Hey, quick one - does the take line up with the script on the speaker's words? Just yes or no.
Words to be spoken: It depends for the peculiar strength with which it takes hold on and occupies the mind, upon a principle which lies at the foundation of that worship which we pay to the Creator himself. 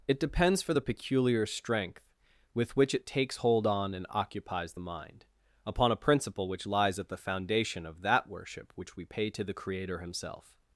yes